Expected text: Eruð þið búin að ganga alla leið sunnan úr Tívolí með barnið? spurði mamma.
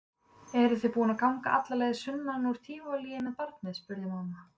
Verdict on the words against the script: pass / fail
pass